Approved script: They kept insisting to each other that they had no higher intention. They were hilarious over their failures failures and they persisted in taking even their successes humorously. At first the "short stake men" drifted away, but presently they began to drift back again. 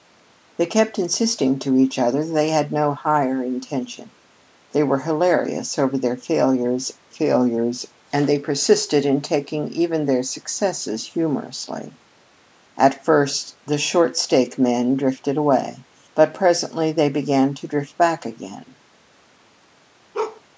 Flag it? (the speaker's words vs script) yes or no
no